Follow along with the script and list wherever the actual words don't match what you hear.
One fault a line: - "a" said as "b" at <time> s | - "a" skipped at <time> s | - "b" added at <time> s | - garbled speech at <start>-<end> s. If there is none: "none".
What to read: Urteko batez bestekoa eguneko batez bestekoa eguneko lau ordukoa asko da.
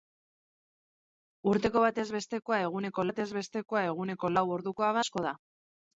none